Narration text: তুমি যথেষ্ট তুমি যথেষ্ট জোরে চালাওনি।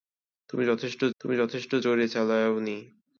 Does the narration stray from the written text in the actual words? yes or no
no